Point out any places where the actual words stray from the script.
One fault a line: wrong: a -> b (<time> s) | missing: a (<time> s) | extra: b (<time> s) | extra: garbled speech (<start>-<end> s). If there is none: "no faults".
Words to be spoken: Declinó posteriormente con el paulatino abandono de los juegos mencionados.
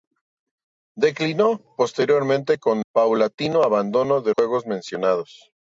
missing: el (2.9 s)
missing: los (4.3 s)